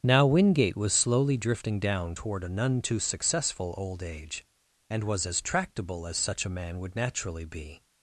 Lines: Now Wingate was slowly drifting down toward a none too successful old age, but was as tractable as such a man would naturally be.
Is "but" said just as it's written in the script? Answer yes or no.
no